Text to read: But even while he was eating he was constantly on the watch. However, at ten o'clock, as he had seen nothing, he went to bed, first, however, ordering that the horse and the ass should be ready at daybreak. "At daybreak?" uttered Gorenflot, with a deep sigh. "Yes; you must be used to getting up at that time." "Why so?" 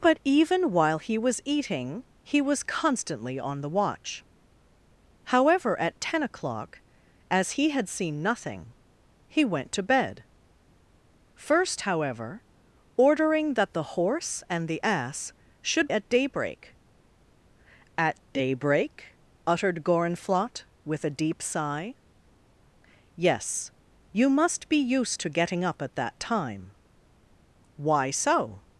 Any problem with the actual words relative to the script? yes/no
yes